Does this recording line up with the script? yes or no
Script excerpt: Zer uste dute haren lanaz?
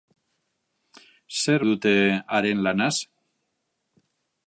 no